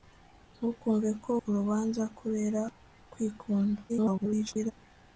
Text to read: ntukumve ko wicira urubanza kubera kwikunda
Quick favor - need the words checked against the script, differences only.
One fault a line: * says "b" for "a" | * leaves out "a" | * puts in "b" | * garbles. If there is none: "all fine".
* leaves out "wicira"
* garbles